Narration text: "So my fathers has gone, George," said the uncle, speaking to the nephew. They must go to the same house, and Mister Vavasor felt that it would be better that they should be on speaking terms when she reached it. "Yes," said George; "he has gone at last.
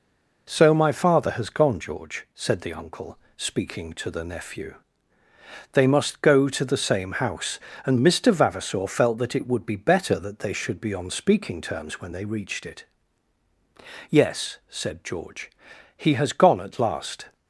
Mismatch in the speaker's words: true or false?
true